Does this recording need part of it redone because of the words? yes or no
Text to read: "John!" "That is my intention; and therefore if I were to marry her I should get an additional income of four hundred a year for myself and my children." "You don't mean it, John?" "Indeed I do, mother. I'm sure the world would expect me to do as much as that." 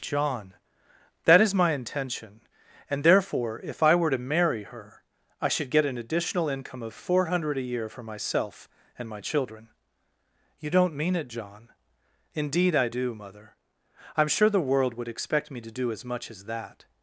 no